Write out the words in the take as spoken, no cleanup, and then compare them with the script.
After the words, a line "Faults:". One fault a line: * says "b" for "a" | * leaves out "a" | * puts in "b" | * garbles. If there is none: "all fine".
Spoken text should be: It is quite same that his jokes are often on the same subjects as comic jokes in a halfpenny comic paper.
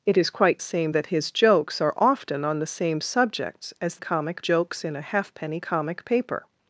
It is quite same that his jokes are often on the same subjects as comic jokes in a halfpenny comic paper.
Faults:
all fine